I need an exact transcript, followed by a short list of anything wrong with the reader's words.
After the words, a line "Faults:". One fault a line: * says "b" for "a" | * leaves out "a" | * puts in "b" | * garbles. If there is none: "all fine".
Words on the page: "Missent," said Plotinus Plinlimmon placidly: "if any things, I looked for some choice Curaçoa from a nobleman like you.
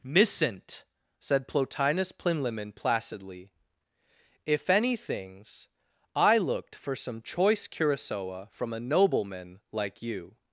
"Missent," said Plotinus Plinlimmon placidly: "if any things, I looked for some choice Curaçoa from a nobleman like you.
Faults:
all fine